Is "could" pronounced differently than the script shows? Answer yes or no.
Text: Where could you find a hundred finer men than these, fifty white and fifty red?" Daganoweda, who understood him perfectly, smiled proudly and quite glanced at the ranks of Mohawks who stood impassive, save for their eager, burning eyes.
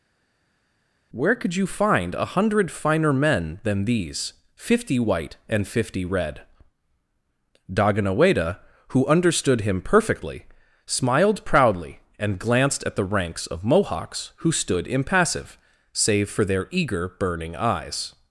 no